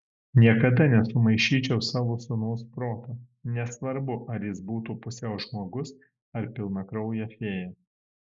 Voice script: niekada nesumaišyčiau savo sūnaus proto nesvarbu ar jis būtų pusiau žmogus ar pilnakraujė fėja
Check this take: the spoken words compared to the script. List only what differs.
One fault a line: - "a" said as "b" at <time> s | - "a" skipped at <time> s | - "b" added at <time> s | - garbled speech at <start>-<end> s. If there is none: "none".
none